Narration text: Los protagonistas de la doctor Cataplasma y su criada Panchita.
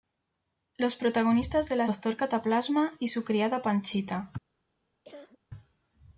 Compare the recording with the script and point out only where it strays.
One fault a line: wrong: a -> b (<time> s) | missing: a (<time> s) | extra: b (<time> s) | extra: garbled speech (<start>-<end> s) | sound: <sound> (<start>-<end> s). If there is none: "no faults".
sound: cough (5.0-5.4 s)